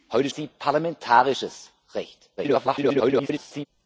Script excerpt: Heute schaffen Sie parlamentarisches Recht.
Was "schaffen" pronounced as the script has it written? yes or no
no